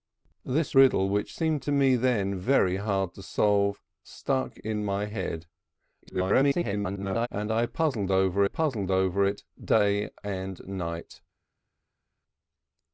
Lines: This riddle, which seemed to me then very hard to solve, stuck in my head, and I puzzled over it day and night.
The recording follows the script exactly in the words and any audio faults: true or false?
false